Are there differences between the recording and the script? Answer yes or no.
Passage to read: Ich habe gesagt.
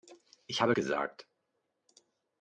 no